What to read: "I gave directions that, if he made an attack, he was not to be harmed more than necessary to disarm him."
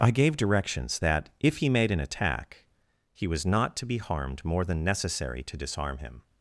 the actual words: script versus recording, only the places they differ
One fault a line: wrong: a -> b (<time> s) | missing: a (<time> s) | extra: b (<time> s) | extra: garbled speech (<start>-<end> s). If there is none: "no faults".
no faults